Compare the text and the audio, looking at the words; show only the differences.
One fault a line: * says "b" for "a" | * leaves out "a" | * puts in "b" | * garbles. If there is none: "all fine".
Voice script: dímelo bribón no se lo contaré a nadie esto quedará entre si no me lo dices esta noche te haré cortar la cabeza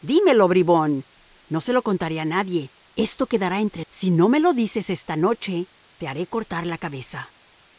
all fine